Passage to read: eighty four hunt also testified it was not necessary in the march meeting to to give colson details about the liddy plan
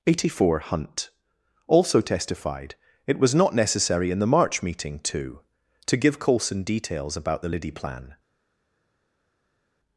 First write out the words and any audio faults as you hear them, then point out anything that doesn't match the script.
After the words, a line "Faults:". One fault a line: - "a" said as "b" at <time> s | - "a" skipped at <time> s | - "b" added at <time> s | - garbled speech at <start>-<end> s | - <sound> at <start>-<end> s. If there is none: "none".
eighty four hunt also testified it was not necessary in the march meeting to to give colson details about the liddy plan
Faults:
none